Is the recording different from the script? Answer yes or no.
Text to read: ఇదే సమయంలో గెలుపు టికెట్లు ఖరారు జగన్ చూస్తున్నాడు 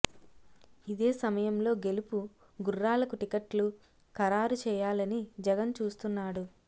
yes